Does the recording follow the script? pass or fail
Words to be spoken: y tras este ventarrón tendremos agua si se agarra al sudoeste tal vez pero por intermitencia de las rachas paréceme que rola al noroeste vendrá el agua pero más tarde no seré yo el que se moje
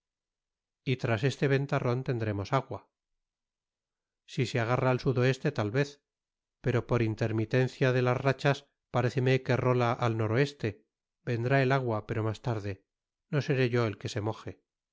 pass